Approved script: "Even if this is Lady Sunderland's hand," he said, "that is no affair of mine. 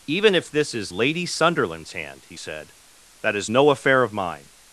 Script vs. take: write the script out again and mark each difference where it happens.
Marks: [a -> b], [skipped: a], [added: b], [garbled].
"Even if this is Lady Sunderland's hand," he said, "that is no affair of mine.